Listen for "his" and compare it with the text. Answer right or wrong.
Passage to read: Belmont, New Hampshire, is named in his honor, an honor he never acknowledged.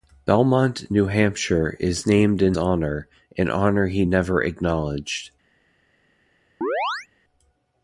wrong